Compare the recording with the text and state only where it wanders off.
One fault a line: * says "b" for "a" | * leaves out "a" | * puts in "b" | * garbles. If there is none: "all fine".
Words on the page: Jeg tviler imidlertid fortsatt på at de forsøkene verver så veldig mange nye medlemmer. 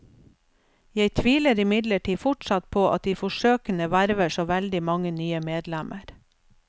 all fine